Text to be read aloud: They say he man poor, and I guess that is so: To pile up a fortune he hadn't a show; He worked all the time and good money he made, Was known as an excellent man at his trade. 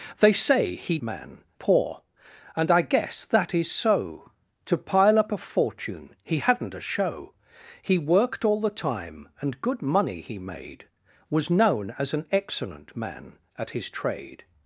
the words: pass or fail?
pass